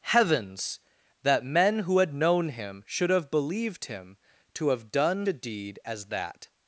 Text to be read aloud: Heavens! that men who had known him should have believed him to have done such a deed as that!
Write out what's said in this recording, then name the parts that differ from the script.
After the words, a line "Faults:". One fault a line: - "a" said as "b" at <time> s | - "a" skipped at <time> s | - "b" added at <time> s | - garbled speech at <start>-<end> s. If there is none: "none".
Heavens! that men who had known him should have believed him to have done a deed as that!
Faults:
- "such" skipped at 5.3 s